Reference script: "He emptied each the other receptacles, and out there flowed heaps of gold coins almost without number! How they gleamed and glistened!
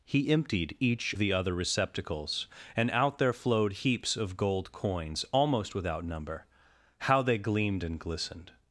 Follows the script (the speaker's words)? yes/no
yes